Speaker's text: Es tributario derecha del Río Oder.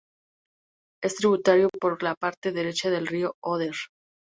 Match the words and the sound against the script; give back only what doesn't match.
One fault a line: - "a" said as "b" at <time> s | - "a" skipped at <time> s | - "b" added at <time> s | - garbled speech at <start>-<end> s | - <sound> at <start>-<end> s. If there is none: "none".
- "por la parte" added at 1.8 s